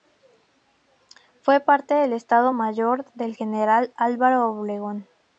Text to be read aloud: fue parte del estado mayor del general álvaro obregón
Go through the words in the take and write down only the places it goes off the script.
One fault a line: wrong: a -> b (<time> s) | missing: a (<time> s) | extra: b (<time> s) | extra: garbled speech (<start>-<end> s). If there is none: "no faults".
no faults